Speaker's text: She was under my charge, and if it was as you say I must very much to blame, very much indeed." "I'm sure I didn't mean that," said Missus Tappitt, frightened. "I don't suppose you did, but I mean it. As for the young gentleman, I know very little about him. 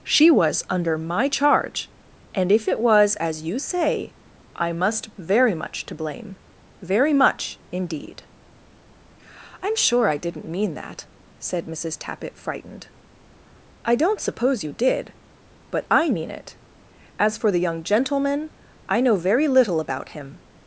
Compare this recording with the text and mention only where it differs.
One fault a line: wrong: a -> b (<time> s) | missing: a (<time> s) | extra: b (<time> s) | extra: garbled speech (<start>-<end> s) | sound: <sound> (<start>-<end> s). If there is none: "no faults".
no faults